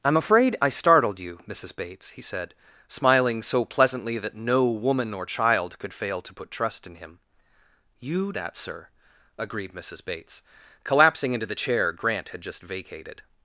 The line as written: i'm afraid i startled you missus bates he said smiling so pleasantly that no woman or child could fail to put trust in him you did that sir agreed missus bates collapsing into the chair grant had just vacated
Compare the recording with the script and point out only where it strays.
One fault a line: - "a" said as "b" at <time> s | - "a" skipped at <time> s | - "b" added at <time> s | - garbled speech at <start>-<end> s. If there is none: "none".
- "did" skipped at 8.3 s